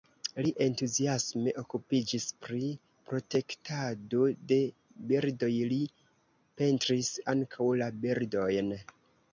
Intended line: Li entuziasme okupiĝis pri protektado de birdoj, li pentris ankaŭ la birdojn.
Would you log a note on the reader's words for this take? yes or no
no